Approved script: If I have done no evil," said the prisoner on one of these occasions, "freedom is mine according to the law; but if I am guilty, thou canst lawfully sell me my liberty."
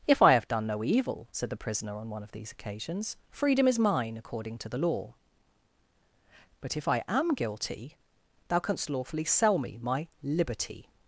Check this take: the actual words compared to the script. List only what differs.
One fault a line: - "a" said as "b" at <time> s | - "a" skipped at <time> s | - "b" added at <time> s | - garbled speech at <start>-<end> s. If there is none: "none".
none